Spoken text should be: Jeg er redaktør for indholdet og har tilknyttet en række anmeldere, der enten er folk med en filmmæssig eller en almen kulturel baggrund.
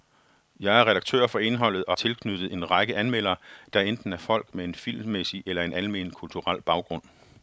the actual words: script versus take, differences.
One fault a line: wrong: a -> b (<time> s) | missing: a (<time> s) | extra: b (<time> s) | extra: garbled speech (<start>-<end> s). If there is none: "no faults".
missing: har (1.9 s)